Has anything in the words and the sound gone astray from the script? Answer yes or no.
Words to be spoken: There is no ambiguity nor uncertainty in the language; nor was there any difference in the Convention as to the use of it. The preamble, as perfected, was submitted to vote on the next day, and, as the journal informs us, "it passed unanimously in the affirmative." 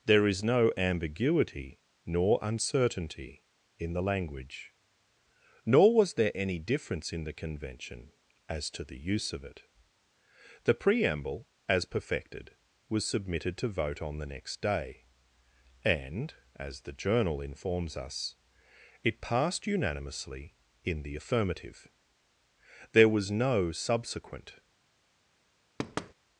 yes